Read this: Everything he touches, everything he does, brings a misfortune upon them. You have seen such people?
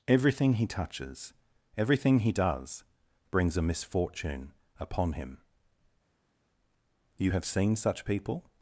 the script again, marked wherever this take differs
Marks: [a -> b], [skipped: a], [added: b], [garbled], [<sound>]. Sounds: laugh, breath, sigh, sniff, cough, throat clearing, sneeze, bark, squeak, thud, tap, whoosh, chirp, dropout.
Everything he touches, everything he does, brings a misfortune upon [them. -> him] You have seen such people?